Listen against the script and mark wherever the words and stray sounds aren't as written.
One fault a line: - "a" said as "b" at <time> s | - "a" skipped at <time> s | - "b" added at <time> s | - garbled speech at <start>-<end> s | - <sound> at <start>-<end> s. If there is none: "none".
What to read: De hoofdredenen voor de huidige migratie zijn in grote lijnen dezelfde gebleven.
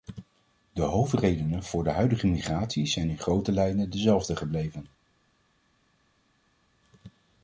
none